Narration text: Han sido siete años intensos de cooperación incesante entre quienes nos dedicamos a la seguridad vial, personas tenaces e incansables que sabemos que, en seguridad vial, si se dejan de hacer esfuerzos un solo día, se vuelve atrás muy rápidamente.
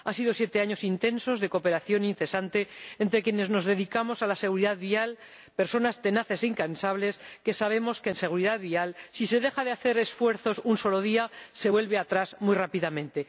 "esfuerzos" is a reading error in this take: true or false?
false